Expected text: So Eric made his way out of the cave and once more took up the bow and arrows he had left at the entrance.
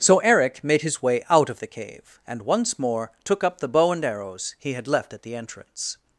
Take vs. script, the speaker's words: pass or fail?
pass